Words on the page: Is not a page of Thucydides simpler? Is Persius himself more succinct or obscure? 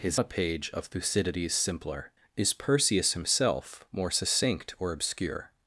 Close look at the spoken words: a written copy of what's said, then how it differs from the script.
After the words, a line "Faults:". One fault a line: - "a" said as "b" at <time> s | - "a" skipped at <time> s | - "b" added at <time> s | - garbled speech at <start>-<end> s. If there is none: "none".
Is a page of Thucydides simpler? Is Persius himself more succinct or obscure?
Faults:
- "not" skipped at 0.2 s